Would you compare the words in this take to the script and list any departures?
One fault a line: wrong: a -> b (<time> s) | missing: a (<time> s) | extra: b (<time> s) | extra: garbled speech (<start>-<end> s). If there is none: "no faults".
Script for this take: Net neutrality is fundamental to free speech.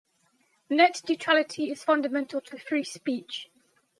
no faults